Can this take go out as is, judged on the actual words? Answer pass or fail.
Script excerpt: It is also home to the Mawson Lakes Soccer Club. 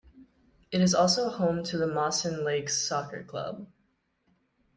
pass